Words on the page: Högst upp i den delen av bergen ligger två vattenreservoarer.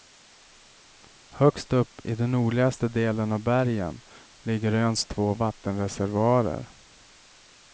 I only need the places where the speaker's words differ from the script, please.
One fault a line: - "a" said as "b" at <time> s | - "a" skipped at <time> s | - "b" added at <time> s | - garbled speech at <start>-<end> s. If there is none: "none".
- "nordligaste" added at 2.3 s
- "öns" added at 4.7 s